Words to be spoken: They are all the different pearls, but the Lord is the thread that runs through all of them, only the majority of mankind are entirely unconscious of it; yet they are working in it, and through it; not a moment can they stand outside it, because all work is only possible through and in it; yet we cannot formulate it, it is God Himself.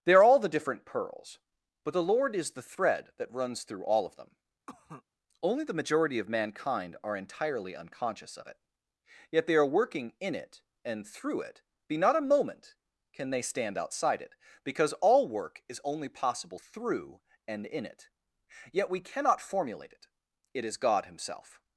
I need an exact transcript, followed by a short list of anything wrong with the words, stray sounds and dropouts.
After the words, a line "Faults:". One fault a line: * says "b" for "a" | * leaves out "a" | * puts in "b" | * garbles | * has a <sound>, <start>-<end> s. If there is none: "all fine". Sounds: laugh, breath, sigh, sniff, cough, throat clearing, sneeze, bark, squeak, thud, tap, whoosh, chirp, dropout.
They are all the different pearls, but the Lord is the thread that runs through all of them, only the majority of mankind are entirely unconscious of it; yet they are working in it, and through it; be not a moment can they stand outside it, because all work is only possible through and in it; yet we cannot formulate it, it is God Himself.
Faults:
* has a cough, 4.7-5.0 s
* puts in "be"